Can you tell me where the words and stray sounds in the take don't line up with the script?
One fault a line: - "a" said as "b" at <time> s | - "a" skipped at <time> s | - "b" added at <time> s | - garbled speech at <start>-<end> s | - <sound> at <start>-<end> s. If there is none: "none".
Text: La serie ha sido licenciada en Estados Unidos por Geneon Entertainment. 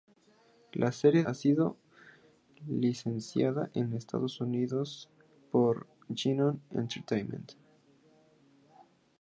none